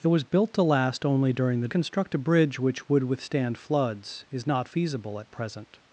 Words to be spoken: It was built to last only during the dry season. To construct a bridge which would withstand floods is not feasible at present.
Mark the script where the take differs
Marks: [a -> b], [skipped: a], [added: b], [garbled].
It was built to last only during the [skipped: dry season. To] construct a bridge which would withstand floods is not feasible at present.